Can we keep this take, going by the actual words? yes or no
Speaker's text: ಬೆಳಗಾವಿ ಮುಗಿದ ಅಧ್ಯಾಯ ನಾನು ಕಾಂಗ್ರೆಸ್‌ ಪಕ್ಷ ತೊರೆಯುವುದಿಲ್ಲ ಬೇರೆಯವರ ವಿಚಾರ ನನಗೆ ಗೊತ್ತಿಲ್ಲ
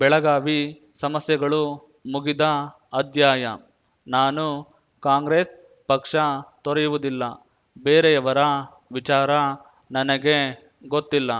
no